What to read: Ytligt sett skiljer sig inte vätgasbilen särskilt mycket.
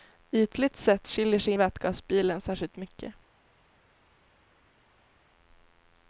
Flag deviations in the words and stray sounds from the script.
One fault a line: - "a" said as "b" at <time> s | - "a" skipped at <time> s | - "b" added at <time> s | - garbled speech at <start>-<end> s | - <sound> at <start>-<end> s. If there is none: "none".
- "inte" skipped at 1.5 s